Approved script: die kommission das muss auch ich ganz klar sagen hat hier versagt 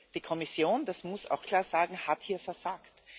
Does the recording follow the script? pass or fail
fail